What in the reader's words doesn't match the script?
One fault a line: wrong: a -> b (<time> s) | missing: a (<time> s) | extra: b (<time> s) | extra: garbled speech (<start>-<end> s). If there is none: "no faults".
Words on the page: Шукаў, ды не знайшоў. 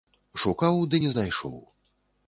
no faults